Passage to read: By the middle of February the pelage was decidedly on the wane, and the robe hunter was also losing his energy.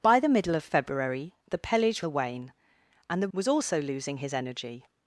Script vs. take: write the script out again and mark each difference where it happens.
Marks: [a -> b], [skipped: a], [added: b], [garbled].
By the middle of February the pelage [skipped: was decidedly on] the wane, and the [skipped: robe hunter] was also losing his energy.